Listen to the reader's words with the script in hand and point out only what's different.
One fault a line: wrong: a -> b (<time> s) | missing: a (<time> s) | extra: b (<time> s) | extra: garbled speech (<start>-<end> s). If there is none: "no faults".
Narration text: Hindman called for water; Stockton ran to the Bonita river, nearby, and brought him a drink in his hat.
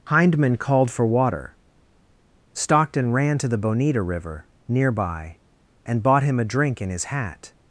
wrong: brought -> bought (6.0 s)